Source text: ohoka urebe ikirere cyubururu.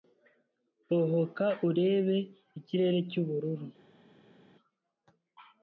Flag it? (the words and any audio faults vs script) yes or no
no